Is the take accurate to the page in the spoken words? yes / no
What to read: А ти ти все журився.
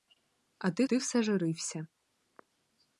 yes